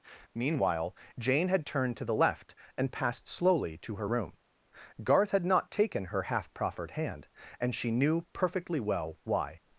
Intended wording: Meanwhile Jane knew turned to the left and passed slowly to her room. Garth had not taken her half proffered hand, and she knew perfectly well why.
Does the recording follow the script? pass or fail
fail